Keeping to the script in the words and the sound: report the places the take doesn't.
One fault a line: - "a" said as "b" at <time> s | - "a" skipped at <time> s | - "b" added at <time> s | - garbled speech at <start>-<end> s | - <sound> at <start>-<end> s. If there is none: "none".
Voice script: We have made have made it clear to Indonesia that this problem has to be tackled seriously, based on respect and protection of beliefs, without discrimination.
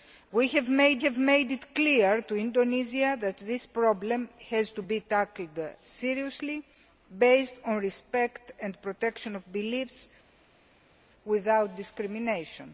none